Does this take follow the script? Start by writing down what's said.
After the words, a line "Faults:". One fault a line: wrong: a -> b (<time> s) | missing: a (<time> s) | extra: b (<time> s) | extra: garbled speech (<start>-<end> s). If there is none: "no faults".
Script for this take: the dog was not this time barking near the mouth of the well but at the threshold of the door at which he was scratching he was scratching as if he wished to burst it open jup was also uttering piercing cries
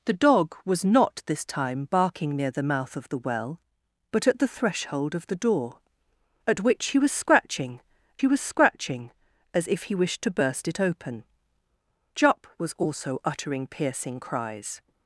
the dog was not this time barking near the mouth of the well but at the threshold of the door at which he was scratching he was scratching as if he wished to burst it open jup was also uttering piercing cries
Faults:
no faults